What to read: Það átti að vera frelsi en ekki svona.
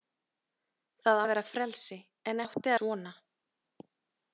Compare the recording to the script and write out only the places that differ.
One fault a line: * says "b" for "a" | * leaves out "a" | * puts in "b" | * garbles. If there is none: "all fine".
* leaves out "átti"
* says "átti" for "ekki"